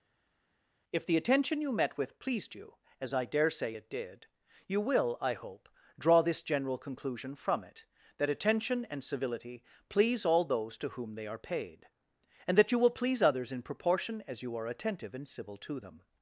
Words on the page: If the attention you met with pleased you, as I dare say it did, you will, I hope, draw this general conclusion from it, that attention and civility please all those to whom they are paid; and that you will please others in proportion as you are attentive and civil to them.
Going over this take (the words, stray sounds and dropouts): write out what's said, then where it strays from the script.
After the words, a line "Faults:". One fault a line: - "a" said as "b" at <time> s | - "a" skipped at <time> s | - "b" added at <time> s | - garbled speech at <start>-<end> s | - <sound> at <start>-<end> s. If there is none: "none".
If the attention you met with pleased you, as I dare say it did, you will, I hope, draw this general conclusion from it, that attention and civility please all those to whom they are paid; and that you will please others in proportion as you are attentive and civil to them.
Faults:
none